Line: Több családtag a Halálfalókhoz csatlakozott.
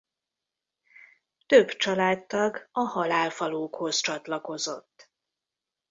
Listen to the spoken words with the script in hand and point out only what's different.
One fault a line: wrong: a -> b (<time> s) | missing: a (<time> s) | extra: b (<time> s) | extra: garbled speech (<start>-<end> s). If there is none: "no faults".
no faults